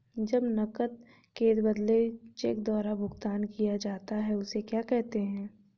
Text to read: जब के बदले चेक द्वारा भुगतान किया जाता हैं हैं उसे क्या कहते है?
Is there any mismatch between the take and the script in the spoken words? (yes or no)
yes